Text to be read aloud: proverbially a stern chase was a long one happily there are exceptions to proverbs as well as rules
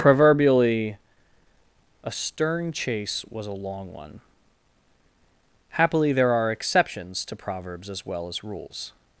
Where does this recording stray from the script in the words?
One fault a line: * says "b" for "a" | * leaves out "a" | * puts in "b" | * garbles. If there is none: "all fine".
all fine